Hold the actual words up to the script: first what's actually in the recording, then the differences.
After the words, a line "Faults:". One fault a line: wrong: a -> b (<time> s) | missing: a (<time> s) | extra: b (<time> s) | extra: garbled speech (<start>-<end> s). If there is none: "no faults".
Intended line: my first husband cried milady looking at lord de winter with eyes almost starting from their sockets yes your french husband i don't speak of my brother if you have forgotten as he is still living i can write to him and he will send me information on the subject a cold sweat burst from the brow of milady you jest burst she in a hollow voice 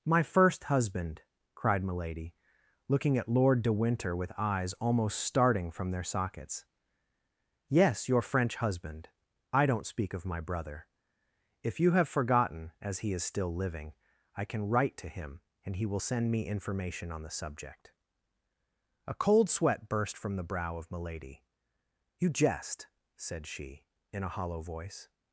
my first husband cried milady looking at lord de winter with eyes almost starting from their sockets yes your french husband i don't speak of my brother if you have forgotten as he is still living i can write to him and he will send me information on the subject a cold sweat burst from the brow of milady you jest said she in a hollow voice
Faults:
wrong: burst -> said (23.2 s)